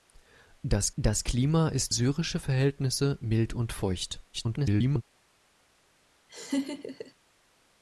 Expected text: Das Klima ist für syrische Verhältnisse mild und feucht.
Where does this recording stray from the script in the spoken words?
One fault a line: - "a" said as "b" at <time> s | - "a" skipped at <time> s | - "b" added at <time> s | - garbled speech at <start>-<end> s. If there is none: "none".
- "das" added at 1.0 s
- "für" skipped at 1.9 s
- garbled speech at 4.3-5.0 s